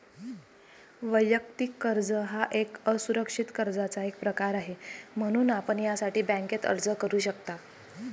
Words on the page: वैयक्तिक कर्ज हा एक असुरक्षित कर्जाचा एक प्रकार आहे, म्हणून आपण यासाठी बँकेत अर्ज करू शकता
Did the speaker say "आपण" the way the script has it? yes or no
yes